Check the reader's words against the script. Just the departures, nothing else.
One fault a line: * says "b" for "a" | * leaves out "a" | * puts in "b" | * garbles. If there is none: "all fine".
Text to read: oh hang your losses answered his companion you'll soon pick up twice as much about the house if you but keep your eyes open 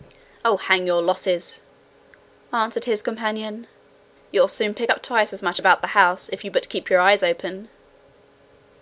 all fine